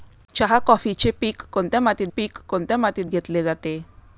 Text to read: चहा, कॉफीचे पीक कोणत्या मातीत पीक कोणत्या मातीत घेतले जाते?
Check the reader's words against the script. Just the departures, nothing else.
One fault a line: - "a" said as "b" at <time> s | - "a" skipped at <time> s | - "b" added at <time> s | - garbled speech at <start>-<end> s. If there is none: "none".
none